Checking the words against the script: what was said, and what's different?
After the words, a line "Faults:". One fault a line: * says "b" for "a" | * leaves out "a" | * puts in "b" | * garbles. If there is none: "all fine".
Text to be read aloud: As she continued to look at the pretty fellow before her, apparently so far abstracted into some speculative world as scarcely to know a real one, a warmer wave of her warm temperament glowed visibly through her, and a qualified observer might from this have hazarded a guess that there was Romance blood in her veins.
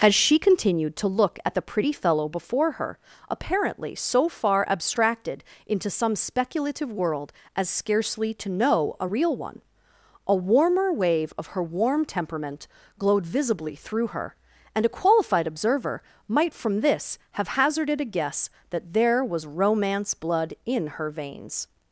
As she continued to look at the pretty fellow before her, apparently so far abstracted into some speculative world as scarcely to know a real one, a warmer wave of her warm temperament glowed visibly through her, and a qualified observer might from this have hazarded a guess that there was Romance blood in her veins.
Faults:
all fine